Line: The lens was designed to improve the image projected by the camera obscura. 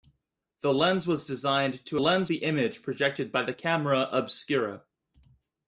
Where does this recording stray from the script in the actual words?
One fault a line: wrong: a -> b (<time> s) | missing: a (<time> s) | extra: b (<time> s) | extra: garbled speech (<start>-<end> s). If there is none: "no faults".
wrong: improve -> lens (2.0 s)